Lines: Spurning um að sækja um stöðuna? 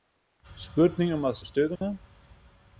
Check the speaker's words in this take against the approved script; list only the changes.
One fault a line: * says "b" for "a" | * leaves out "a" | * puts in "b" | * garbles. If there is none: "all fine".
* leaves out "sækja"